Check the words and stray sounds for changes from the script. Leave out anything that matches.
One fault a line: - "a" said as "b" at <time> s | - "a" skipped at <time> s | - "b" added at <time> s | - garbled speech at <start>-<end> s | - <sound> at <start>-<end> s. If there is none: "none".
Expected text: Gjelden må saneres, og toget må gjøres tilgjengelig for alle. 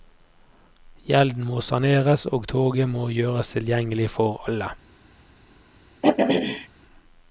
- throat clearing at 6.0-6.7 s